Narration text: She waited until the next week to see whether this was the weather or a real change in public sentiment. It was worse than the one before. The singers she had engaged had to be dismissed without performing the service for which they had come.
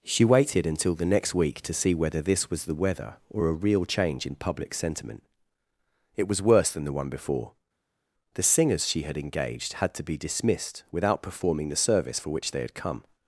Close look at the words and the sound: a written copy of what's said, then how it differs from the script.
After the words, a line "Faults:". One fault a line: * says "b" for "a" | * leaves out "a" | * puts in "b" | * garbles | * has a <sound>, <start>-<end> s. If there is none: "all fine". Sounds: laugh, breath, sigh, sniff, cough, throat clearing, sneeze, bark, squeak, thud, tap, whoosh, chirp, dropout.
She waited until the next week to see whether this was the weather or a real change in public sentiment. It was worse than the one before. The singers she had engaged had to be dismissed without performing the service for which they had come.
Faults:
all fine